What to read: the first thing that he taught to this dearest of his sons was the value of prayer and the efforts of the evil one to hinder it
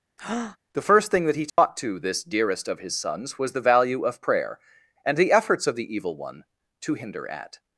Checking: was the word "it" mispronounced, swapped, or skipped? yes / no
yes